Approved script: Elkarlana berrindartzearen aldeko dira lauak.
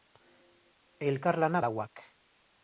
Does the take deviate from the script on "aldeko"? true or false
true